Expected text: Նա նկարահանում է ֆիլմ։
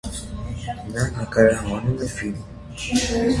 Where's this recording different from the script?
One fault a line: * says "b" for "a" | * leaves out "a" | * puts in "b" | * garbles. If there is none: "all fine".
all fine